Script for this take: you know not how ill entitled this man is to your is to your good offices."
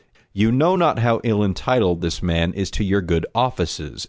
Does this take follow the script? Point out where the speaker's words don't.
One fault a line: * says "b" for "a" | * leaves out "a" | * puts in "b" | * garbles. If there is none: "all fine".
* leaves out "is to your"